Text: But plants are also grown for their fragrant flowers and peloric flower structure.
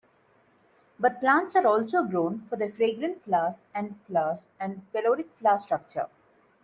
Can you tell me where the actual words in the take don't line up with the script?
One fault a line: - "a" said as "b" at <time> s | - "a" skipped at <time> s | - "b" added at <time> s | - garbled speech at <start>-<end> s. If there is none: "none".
- "flowers and" added at 4.0 s